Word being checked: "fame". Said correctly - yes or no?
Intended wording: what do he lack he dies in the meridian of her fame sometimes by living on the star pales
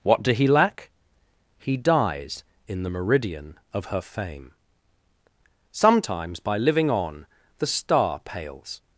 yes